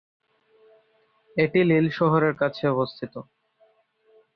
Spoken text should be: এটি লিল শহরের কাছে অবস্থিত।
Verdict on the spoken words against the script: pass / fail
pass